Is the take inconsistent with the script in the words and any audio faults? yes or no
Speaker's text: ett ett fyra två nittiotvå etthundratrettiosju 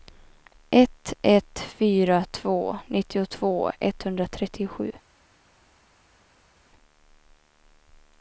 no